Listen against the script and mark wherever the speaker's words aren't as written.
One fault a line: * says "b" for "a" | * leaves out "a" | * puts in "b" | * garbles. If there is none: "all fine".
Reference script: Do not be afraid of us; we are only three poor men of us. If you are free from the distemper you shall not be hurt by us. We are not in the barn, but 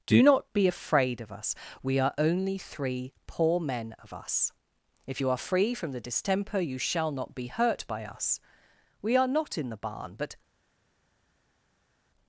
all fine